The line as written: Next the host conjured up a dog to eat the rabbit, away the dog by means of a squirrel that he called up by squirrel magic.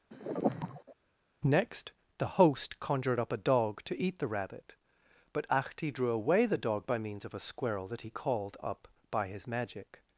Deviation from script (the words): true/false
true